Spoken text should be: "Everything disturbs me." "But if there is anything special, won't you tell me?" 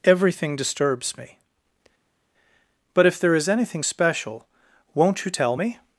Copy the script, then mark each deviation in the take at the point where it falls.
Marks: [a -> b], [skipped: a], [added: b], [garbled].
"Everything disturbs me." "But if there is anything special, won't you tell me?"